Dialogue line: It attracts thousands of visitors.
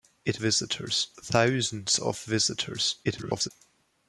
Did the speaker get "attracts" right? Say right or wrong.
wrong